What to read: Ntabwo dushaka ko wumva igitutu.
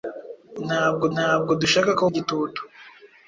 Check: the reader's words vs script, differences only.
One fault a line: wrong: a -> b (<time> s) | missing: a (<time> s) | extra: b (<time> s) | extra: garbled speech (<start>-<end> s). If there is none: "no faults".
extra: ntabwo (1.1 s)
missing: wumva (2.0 s)